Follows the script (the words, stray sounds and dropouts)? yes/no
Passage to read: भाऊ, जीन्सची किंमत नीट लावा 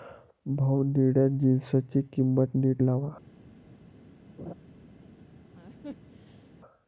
no